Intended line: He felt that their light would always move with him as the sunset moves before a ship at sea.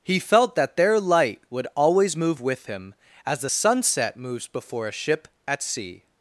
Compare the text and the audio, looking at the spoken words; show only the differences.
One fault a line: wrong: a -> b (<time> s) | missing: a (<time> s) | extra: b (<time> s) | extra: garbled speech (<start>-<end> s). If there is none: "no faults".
no faults